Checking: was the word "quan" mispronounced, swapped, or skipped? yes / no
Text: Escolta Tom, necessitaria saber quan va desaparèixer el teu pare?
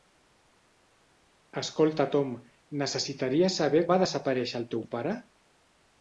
yes